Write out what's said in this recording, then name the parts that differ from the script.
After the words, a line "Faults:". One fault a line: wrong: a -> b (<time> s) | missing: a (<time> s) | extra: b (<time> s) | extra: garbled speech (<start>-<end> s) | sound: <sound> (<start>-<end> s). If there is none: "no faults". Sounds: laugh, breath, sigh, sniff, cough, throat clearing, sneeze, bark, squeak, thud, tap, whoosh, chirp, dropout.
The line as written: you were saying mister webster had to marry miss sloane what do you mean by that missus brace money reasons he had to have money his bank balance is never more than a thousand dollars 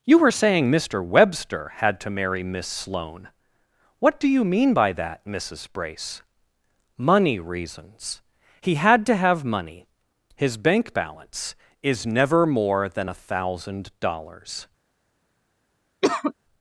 you were saying mister webster had to marry miss sloane what do you mean by that missus brace money reasons he had to have money his bank balance is never more than a thousand dollars
Faults:
sound: cough (16.0-16.3 s)